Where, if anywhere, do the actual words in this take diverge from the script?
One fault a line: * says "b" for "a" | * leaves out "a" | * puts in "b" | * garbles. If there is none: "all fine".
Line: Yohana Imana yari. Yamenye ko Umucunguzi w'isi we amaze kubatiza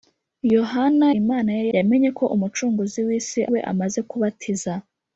all fine